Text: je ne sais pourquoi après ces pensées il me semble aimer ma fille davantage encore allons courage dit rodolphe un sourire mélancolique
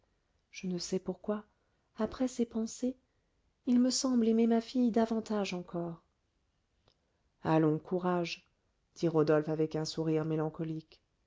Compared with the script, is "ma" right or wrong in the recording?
right